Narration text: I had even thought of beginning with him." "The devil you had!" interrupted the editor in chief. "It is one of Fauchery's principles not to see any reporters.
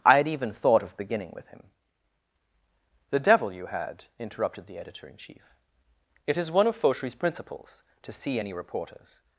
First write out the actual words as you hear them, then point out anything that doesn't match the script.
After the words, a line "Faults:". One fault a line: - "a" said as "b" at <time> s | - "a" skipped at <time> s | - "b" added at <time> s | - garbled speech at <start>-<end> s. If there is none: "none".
I had even thought of beginning with him." "The devil you had!" interrupted the editor in chief. "It is one of Fauchery's principles to see any reporters.
Faults:
- "not" skipped at 7.8 s